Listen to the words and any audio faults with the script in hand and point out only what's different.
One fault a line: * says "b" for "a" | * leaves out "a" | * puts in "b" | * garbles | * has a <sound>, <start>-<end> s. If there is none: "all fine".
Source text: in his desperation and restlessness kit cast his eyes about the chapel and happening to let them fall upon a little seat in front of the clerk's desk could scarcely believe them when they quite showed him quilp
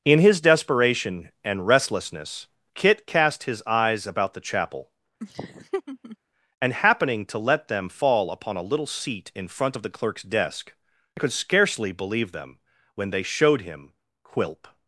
* has a laugh, 5.2-6.2 s
* leaves out "quite"